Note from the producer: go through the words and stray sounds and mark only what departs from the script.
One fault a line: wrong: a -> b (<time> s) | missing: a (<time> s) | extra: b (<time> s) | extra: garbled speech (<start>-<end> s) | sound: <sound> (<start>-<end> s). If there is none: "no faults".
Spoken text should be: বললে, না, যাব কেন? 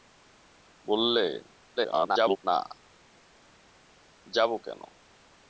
extra: garbled speech (1.8-2.4 s)